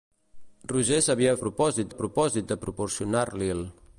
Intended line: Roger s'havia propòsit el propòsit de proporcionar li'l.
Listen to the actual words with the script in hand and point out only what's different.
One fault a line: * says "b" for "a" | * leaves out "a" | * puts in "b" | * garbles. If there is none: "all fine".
all fine